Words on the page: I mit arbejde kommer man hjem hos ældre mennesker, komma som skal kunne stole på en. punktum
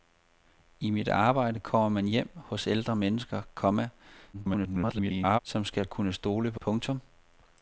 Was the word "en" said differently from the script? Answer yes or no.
yes